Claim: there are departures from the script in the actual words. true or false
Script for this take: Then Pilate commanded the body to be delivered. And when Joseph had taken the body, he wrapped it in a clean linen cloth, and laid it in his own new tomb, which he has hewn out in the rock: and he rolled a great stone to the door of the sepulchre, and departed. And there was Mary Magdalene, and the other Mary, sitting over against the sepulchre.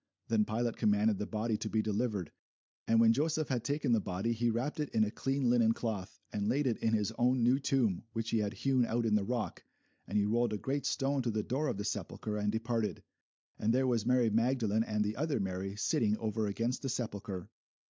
true